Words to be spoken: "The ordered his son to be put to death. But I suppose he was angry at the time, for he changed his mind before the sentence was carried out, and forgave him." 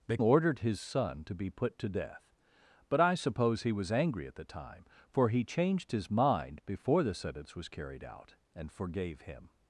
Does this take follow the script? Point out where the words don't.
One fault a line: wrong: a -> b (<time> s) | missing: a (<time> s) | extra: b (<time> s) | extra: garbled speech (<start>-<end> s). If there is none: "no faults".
no faults